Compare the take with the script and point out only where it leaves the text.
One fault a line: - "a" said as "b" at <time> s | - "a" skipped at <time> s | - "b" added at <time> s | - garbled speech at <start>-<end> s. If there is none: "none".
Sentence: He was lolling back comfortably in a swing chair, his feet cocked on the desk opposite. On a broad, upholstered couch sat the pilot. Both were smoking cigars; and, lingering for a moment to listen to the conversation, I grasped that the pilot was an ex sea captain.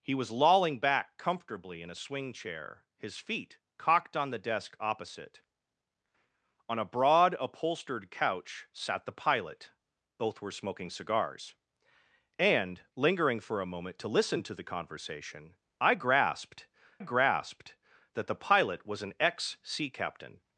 - "grasped" added at 17.0 s